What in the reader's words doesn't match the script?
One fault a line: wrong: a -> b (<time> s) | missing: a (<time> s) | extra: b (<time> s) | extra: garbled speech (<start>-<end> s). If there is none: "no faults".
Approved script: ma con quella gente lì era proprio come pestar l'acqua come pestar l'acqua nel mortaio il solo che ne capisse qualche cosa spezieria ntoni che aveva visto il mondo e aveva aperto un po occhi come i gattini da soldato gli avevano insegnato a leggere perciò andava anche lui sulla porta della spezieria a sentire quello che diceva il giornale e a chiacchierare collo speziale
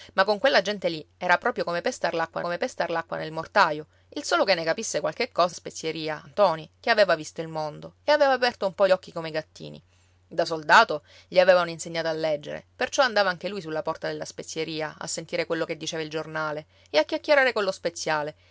no faults